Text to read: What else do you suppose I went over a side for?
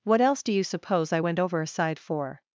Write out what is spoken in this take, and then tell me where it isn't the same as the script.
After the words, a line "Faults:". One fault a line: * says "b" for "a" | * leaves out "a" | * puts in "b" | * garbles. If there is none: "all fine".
What else do you suppose I went over a side for?
Faults:
all fine